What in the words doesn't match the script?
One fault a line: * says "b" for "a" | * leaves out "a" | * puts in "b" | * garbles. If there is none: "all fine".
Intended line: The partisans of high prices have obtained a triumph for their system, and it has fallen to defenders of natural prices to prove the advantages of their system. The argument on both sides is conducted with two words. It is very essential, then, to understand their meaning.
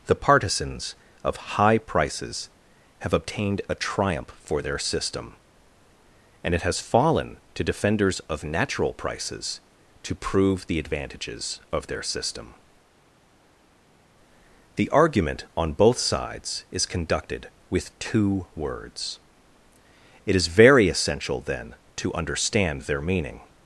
all fine